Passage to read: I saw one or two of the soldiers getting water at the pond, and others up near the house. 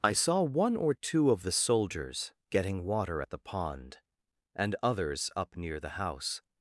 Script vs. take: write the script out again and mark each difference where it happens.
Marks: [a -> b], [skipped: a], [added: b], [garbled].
I saw one or two of the soldiers getting water at the pond, and others up near the house.